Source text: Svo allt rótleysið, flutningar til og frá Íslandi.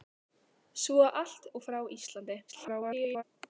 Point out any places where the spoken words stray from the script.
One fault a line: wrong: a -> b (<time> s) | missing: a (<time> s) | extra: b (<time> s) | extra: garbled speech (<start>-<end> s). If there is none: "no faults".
missing: rótleysið flutningar til (1.4 s)
extra: garbled speech (2.5-3.2 s)